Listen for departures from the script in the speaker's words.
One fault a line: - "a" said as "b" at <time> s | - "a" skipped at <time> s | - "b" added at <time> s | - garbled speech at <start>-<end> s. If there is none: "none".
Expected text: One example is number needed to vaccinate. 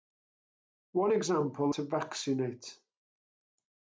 - "is number needed" skipped at 1.7 s